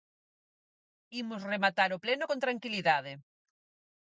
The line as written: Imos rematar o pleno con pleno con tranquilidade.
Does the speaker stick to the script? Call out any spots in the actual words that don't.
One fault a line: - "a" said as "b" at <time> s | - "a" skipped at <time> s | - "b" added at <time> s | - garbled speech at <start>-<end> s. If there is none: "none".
- "pleno con" skipped at 2.4 s